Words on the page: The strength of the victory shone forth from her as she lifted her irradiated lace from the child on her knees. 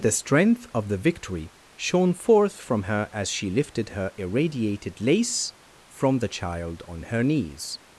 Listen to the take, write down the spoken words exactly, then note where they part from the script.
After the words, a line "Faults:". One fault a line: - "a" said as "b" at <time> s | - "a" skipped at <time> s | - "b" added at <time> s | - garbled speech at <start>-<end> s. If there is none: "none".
The strength of the victory shone forth from her as she lifted her irradiated lace from the child on her knees.
Faults:
none